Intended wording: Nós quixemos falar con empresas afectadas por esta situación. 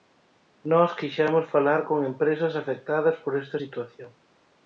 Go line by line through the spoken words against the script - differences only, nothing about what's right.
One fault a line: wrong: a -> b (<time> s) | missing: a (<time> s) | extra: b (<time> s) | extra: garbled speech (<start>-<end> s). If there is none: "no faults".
no faults